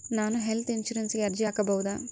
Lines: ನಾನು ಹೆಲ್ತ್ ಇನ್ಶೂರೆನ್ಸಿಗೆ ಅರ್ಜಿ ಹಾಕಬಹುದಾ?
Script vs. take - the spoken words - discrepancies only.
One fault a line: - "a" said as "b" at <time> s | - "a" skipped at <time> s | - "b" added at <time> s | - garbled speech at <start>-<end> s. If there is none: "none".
none